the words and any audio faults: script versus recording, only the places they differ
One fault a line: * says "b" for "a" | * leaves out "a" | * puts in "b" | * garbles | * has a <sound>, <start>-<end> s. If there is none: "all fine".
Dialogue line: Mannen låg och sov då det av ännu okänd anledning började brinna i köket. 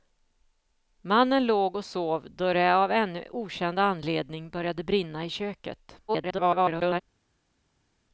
* garbles